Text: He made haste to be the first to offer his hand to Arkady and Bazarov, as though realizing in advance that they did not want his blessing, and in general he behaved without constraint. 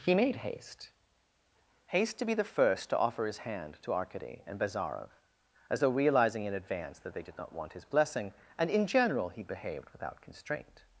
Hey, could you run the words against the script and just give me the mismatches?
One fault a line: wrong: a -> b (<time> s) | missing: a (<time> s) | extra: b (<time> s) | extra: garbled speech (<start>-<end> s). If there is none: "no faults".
extra: haste (1.9 s)